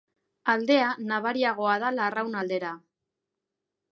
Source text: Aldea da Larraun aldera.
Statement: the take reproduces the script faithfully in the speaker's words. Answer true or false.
false